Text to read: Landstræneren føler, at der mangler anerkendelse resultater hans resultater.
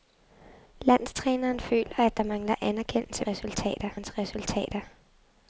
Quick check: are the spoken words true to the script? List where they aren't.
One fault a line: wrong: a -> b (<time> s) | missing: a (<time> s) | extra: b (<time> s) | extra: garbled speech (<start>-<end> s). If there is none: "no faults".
no faults